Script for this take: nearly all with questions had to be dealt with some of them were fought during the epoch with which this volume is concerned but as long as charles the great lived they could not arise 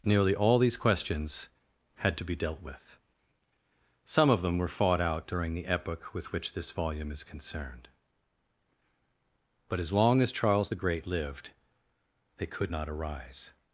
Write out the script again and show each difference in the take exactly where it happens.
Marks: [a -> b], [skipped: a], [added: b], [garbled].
nearly all [with -> these] questions had to be dealt with some of them were fought [added: out] during the epoch with which this volume is concerned but as long as charles the great lived they could not arise